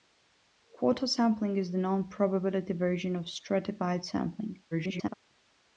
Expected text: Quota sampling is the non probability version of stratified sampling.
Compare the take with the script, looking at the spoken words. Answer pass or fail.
fail